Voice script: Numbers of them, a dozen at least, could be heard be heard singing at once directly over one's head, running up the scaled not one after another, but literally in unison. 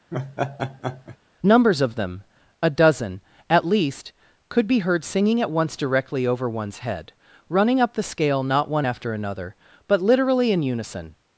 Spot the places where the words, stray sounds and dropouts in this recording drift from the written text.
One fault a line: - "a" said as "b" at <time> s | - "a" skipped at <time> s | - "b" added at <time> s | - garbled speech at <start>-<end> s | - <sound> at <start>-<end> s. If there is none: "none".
- laugh at 0.1-1.2 s
- "be heard" skipped at 5.0 s
- "scaled" said as "scale" at 8.0 s